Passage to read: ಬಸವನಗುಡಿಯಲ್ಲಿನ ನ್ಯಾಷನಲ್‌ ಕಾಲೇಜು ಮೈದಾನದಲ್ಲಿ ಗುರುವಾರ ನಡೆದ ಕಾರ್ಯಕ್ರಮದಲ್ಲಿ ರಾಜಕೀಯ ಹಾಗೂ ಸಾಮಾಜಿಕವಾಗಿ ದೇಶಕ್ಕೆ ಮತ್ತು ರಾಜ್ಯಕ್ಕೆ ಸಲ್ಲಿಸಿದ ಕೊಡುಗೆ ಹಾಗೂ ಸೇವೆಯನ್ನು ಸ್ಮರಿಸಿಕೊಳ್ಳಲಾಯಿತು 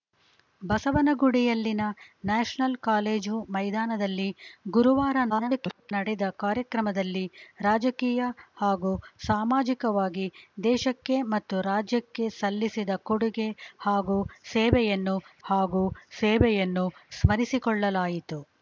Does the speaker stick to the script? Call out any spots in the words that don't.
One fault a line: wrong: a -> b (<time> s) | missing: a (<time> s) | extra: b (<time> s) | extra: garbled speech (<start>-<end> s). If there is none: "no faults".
extra: garbled speech (5.3-5.9 s)
extra: ಹಾಗೂ ಸೇವೆಯನ್ನು (15.4 s)